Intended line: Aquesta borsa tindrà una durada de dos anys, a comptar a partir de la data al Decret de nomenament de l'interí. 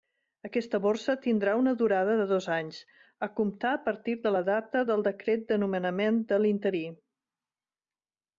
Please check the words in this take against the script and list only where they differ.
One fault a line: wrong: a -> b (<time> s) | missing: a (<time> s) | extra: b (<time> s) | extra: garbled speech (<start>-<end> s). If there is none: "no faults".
wrong: al -> del (4.9 s)